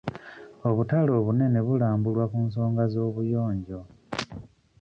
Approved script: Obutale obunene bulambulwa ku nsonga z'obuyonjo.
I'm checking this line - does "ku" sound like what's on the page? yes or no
yes